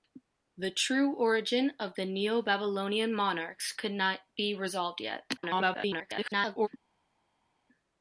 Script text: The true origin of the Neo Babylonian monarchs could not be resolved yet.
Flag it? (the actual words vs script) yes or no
yes